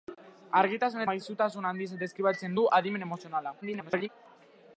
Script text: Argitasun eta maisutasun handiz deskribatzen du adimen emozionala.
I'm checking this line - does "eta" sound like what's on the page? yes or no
no